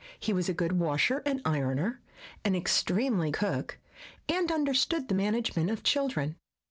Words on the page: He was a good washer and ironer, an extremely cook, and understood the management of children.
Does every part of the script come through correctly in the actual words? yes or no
yes